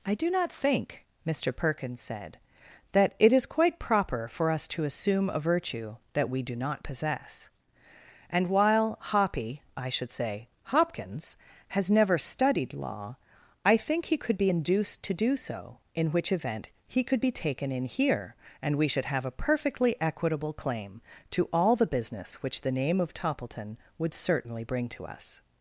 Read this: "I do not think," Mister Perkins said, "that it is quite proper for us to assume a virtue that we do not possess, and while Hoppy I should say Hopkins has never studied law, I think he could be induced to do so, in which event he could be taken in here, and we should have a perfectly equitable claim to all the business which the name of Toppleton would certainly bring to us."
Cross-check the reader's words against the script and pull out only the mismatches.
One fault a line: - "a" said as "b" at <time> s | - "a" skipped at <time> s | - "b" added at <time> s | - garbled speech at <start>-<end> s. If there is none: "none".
none